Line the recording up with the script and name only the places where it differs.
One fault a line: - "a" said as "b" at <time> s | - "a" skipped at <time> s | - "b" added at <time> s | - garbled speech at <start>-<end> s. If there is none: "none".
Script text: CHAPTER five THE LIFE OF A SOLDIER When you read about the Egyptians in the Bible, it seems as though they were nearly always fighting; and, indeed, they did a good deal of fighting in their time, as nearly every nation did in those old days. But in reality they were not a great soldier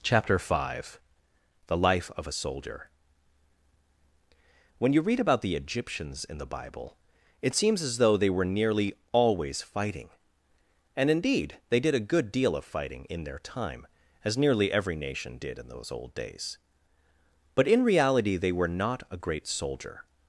none